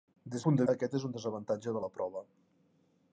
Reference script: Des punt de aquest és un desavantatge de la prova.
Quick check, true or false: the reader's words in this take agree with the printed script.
true